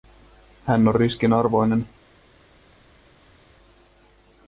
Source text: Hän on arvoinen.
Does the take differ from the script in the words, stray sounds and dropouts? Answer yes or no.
yes